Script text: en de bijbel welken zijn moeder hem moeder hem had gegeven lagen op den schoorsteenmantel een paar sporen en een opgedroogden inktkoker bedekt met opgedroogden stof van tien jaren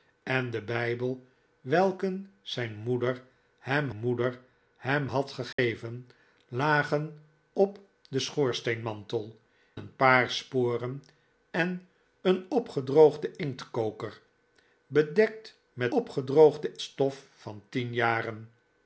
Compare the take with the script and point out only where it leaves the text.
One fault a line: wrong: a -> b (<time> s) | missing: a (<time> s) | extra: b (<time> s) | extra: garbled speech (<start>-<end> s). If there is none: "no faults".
no faults